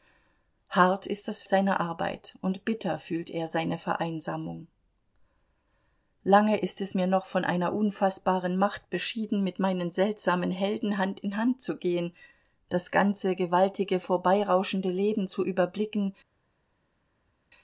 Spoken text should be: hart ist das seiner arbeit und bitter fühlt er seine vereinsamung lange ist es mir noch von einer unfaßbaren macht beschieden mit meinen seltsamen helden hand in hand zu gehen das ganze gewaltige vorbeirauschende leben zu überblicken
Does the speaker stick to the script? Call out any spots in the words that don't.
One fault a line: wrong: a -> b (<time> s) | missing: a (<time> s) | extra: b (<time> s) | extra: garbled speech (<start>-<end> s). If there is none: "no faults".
no faults